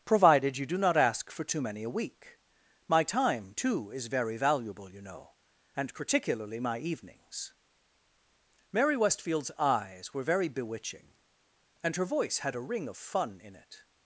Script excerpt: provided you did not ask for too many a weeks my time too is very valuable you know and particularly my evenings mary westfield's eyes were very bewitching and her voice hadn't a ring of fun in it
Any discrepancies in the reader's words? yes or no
yes